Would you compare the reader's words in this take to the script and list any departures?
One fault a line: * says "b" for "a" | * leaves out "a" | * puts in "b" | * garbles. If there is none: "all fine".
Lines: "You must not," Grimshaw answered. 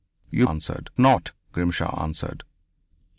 * says "answered" for "must"